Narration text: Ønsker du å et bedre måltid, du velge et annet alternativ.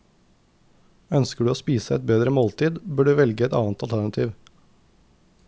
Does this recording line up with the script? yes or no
no